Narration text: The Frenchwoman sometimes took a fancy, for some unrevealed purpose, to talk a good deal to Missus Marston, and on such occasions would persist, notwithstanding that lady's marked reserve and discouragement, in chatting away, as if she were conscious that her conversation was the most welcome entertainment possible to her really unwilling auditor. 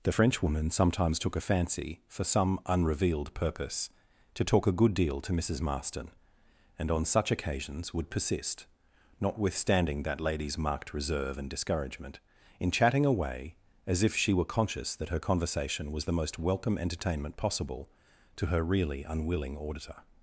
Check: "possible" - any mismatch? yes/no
no